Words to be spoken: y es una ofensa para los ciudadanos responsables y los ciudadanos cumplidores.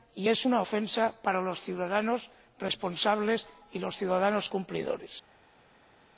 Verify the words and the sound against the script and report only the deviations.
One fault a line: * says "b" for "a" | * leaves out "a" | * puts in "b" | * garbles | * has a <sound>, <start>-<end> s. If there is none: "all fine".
all fine